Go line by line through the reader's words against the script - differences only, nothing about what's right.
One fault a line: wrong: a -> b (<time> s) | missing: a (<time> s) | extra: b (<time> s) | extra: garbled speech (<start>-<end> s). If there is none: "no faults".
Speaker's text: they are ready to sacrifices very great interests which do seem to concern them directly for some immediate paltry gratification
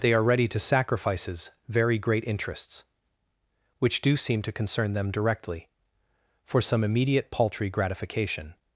no faults